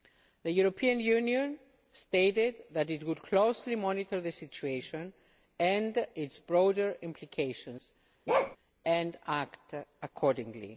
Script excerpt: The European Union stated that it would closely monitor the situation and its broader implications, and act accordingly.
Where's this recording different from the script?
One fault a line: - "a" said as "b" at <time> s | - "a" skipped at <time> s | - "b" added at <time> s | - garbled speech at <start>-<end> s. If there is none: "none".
none